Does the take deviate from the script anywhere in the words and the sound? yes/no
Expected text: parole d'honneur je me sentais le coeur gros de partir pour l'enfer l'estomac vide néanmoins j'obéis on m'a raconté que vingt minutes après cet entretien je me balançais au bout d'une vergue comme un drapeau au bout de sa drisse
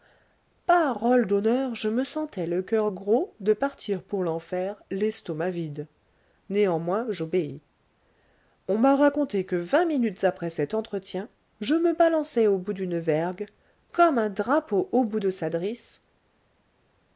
no